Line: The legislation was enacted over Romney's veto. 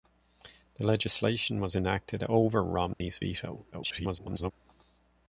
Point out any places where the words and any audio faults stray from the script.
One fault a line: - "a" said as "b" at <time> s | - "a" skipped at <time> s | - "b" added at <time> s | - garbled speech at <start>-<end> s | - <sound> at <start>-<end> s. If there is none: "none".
- dropout at 2.9-3.0 s
- garbled speech at 3.7-4.5 s